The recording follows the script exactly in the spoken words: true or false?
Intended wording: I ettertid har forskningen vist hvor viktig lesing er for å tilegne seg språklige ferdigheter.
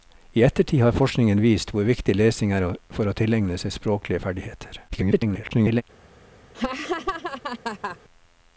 false